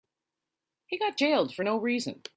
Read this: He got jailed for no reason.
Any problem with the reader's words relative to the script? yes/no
no